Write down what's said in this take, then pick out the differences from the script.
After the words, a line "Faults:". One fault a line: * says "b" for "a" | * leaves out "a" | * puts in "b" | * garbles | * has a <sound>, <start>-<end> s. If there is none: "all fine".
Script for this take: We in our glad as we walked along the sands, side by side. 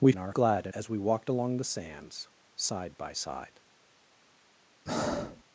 We in our glad as we walked along the sands, side by side.
Faults:
* has a breath, 4.9-5.4 s